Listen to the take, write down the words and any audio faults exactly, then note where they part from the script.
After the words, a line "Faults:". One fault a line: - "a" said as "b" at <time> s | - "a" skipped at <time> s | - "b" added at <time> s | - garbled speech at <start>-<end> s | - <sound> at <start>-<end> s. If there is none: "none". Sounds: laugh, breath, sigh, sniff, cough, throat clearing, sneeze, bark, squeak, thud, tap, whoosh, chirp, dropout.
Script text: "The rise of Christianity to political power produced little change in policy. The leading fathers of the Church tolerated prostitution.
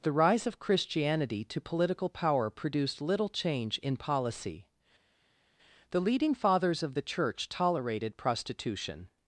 "The rise of Christianity to political power produced little change in policy. The leading fathers of the Church tolerated prostitution.
Faults:
none